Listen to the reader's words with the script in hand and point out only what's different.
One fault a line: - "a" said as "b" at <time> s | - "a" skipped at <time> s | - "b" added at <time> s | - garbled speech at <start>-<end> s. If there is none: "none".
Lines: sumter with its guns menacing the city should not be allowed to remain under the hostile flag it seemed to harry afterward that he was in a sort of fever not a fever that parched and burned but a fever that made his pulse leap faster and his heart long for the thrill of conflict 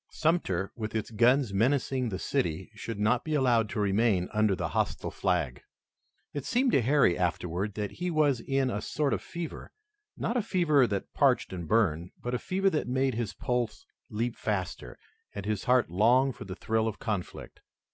none